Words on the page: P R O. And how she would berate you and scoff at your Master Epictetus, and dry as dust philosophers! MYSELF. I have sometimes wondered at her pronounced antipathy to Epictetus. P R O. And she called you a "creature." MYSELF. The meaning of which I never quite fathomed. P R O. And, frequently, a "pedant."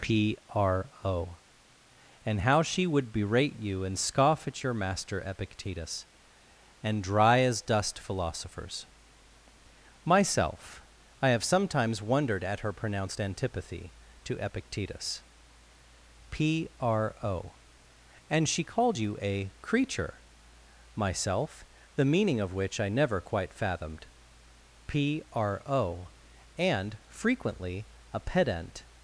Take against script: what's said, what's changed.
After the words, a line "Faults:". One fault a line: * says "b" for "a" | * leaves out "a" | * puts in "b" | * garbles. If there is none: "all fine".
P R O. And how she would berate you and scoff at your Master Epictetus, and dry as dust philosophers! MYSELF. I have sometimes wondered at her pronounced antipathy to Epictetus. P R O. And she called you a "creature." MYSELF. The meaning of which I never quite fathomed. P R O. And, frequently, a "pedant."
Faults:
all fine